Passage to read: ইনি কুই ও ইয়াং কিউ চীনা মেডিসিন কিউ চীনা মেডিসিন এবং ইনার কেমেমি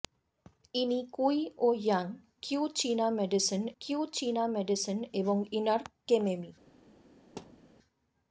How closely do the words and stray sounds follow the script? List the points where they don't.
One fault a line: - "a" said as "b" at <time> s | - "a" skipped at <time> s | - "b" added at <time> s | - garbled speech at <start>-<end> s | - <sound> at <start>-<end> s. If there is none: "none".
- thud at 7.4-7.7 s